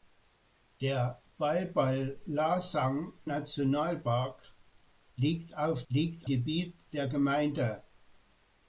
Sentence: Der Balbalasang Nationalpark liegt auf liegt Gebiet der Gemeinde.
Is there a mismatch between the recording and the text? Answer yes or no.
no